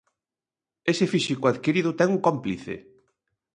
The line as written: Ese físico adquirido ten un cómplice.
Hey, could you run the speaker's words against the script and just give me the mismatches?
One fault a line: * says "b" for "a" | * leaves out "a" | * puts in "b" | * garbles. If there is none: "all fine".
all fine